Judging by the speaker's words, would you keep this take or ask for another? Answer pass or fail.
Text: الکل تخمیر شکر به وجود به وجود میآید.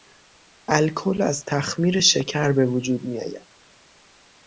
fail